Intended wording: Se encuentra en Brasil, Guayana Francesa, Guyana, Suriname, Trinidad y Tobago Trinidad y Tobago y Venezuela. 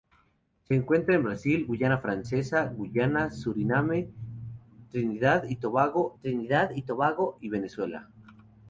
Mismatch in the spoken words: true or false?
false